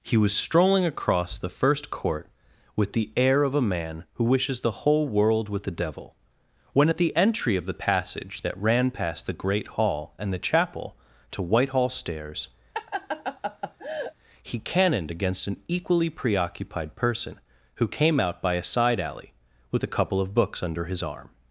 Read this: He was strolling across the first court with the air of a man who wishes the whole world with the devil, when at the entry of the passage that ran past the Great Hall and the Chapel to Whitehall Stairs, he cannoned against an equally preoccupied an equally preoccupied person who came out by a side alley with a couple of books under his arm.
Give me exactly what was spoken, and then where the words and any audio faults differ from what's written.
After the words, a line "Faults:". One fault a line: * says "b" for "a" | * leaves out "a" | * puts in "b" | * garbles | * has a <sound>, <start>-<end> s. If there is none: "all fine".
He was strolling across the first court with the air of a man who wishes the whole world with the devil, when at the entry of the passage that ran past the Great Hall and the Chapel to Whitehall Stairs, he cannoned against an equally preoccupied person who came out by a side alley with a couple of books under his arm.
Faults:
* has a laugh, 12.7-14.1 s
* leaves out "an equally preoccupied"